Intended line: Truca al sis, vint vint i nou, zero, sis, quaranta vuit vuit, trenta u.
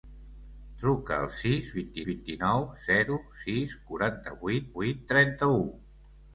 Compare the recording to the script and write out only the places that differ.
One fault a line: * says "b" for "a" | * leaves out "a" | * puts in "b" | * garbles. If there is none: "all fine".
all fine